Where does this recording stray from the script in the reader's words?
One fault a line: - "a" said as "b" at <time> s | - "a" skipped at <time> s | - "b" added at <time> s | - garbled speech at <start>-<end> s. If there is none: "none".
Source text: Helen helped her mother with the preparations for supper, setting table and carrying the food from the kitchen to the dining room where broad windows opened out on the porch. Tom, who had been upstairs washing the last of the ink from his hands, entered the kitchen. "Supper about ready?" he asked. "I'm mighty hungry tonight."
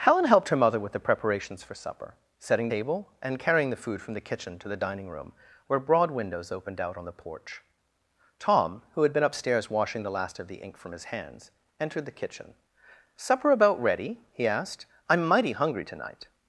none